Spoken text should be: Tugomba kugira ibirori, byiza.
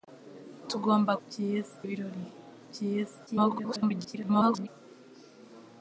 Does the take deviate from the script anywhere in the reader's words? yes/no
yes